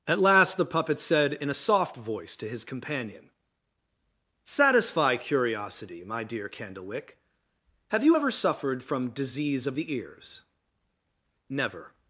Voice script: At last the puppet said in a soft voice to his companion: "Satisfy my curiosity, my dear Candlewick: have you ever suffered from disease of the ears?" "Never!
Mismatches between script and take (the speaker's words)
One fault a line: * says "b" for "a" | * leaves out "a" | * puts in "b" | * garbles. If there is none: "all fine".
* leaves out "my"